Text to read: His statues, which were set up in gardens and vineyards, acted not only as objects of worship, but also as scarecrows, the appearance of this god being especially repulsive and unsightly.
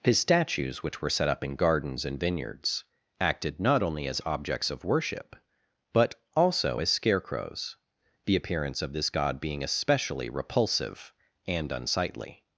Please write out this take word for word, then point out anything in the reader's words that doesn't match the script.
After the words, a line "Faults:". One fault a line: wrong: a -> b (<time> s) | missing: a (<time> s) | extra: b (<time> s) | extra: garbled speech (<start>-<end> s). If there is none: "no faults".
His statues, which were set up in gardens and vineyards, acted not only as objects of worship, but also as scarecrows, the appearance of this god being especially repulsive and unsightly.
Faults:
no faults